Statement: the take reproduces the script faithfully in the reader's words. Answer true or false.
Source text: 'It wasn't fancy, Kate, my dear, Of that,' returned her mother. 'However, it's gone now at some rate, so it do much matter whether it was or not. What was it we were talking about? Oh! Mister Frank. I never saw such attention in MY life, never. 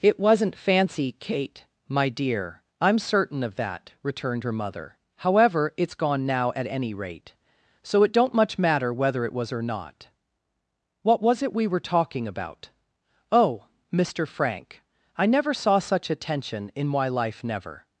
false